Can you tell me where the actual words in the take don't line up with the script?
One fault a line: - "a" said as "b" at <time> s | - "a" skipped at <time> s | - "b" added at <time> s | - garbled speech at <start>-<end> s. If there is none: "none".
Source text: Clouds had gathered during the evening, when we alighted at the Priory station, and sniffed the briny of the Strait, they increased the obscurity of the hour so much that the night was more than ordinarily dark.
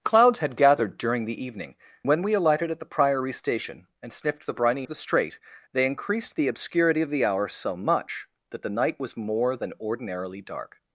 none